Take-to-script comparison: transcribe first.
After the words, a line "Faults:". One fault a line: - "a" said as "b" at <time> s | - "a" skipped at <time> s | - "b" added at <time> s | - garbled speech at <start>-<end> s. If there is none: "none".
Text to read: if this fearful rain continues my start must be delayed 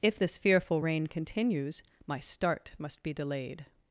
if this fearful rain continues my start must be delayed
Faults:
none